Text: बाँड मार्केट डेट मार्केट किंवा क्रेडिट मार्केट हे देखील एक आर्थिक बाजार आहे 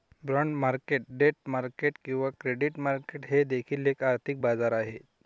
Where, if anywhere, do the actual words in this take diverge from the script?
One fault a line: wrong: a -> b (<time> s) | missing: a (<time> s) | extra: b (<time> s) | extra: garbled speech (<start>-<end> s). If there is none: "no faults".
no faults